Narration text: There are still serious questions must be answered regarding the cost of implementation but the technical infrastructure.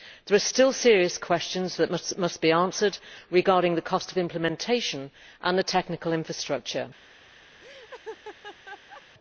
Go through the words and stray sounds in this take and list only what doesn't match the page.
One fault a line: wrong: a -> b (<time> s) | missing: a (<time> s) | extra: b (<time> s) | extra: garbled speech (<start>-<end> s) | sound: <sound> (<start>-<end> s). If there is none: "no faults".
extra: that (1.8 s)
wrong: but -> and (5.4 s)
sound: laugh (7.6-9.0 s)